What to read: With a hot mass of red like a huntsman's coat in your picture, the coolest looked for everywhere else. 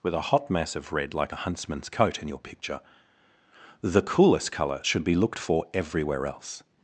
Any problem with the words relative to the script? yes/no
yes